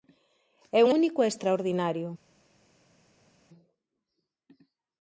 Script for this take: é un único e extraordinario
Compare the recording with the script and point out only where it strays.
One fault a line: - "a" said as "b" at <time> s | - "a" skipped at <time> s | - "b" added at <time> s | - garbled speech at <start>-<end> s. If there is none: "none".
none